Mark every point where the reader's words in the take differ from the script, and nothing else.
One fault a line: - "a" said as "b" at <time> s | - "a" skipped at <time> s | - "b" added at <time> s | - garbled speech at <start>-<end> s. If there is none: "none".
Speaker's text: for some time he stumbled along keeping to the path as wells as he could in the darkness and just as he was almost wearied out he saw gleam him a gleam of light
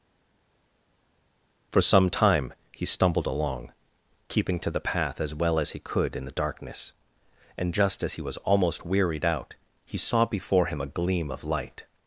- "wells" said as "well" at 5.3 s
- "gleam" said as "before" at 10.3 s